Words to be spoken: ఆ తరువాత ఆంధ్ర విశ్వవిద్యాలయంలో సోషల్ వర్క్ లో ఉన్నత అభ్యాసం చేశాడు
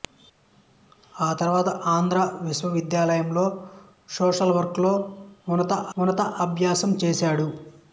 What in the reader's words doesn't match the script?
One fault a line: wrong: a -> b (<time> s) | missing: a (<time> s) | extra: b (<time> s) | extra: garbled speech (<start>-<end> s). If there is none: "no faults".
extra: ఉన్నత (6.0 s)